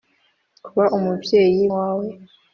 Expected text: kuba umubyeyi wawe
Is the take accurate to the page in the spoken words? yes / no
yes